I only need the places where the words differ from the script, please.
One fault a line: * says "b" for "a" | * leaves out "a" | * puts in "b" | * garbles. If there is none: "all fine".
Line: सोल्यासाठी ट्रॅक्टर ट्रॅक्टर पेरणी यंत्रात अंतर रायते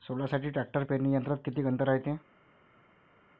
* leaves out "ट्रॅक्टर"
* puts in "किती"